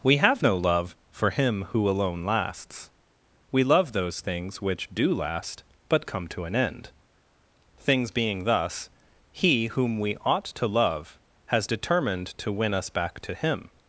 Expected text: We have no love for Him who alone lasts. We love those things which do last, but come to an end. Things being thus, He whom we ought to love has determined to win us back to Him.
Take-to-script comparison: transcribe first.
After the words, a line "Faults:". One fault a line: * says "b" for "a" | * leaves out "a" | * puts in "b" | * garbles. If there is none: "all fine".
We have no love for Him who alone lasts. We love those things which do last, but come to an end. Things being thus, He whom we ought to love has determined to win us back to Him.
Faults:
all fine